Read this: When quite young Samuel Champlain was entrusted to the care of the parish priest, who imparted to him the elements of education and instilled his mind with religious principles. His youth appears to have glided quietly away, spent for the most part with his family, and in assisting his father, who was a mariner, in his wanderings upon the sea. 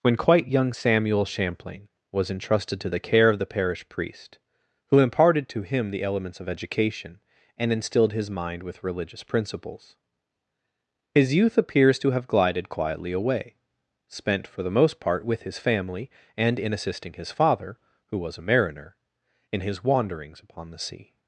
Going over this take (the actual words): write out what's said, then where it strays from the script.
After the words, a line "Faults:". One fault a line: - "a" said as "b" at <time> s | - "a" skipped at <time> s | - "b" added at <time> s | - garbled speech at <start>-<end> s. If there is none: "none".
When quite young Samuel Champlain was entrusted to the care of the parish priest, who imparted to him the elements of education and instilled his mind with religious principles. His youth appears to have glided quietly away, spent for the most part with his family, and in assisting his father, who was a mariner, in his wanderings upon the sea.
Faults:
none